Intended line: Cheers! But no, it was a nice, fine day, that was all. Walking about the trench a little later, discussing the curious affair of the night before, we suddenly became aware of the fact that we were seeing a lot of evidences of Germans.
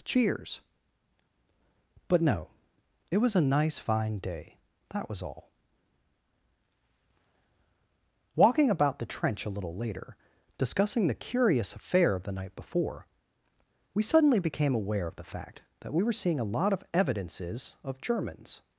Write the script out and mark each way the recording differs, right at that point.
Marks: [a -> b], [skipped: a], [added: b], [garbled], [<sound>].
Cheers! But no, it was a nice, fine day, that was all. Walking about the trench a little later, discussing the curious affair of the night before, we suddenly became aware of the fact that we were seeing a lot of evidences of Germans.